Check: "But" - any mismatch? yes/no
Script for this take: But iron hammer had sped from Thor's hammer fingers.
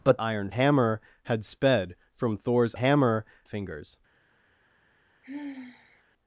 no